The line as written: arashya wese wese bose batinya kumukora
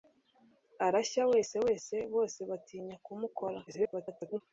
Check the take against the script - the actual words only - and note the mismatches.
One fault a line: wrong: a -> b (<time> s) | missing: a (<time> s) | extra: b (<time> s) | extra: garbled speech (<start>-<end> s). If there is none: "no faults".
extra: garbled speech (3.7-4.4 s)